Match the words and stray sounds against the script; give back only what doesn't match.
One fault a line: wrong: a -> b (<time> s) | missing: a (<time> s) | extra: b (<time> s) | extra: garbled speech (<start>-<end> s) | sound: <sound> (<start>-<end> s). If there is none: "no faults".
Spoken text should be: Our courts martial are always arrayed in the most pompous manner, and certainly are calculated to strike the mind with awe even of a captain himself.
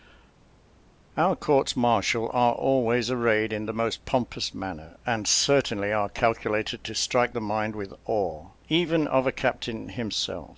no faults